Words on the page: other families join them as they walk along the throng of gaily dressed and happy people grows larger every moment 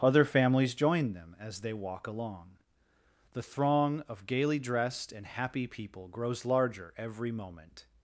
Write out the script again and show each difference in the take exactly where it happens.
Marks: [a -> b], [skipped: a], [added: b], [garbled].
other families join them as they walk along the throng of gaily dressed and happy people grows larger every moment